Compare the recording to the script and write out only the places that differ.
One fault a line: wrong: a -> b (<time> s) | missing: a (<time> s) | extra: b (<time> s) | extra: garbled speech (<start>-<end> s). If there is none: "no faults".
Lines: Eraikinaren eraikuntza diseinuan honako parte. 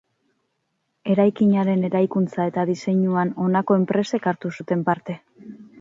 extra: eta (2.5 s)
extra: enpresek hartu zuten (3.9 s)